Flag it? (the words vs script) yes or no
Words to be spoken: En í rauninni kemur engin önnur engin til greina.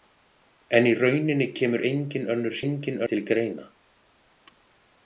no